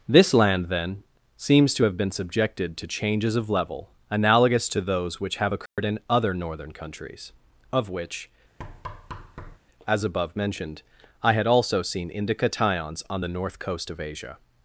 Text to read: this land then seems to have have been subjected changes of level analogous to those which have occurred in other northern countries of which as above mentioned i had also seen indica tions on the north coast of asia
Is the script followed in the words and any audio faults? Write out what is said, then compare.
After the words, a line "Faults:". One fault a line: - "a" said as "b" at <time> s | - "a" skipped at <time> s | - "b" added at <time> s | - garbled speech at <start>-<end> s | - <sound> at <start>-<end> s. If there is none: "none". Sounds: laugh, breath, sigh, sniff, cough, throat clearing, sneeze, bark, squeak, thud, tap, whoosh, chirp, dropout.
this land then seems to have been subjected to changes of level analogous to those which have occurred in other northern countries of which as above mentioned i had also seen indica tions on the north coast of asia
Faults:
- "have" skipped at 2.0 s
- "to" added at 2.8 s
- dropout at 5.7-5.8 s
- thud at 8.6-9.6 s